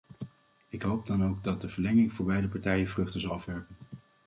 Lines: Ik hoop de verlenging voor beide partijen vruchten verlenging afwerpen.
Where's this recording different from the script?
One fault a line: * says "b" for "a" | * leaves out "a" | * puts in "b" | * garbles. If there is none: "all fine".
* puts in "dan ook dat"
* says "zal" for "verlenging"